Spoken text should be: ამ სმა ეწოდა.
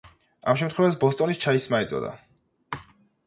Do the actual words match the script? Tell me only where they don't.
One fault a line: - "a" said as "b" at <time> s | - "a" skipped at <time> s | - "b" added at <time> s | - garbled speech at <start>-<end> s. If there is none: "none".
- "შემთხვევას ბოსტონის ჩაის" added at 0.6 s